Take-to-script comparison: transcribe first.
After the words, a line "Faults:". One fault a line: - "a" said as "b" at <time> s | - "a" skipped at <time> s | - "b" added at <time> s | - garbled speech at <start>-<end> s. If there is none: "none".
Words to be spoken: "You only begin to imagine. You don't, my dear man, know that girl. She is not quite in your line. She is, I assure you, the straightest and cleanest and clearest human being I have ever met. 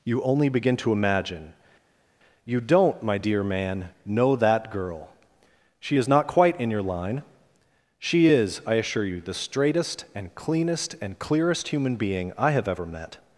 "You only begin to imagine. You don't, my dear man, know that girl. She is not quite in your line. She is, I assure you, the straightest and cleanest and clearest human being I have ever met.
Faults:
none